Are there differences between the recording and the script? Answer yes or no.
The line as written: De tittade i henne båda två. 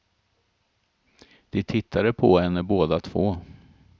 yes